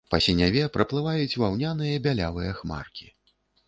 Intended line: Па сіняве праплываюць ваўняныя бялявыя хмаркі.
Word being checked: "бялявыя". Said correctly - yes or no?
yes